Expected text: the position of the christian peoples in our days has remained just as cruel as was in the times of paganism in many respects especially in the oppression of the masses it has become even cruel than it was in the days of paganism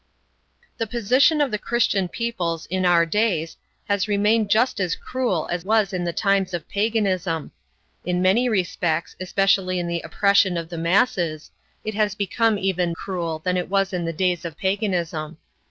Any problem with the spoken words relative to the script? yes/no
no